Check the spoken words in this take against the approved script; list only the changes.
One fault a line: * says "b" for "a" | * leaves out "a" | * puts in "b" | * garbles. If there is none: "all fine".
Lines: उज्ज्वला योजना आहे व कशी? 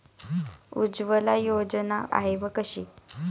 all fine